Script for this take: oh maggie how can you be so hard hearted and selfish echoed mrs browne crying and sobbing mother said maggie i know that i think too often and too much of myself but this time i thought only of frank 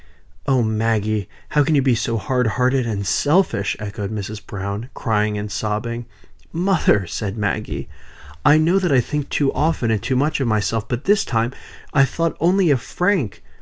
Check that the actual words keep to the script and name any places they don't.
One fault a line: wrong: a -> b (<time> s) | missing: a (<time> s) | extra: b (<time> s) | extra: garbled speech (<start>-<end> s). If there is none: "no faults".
no faults